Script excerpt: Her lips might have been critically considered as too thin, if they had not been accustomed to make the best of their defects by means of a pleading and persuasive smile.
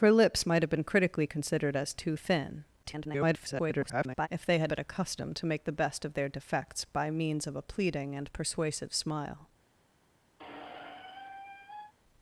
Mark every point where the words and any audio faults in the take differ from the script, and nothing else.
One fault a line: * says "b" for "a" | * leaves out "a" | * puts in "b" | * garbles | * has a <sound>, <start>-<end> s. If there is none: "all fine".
* garbles
* leaves out "not"
* has a squeak, 10.4-11.9 s